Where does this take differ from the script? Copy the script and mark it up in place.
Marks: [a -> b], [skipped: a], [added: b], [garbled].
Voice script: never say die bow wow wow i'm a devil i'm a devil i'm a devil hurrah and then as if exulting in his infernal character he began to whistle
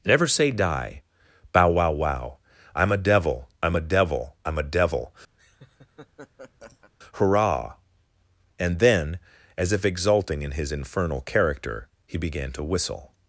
never say die bow wow wow i'm a devil i'm a devil i'm a devil hurrah and then as if exulting in his infernal character he began to whistle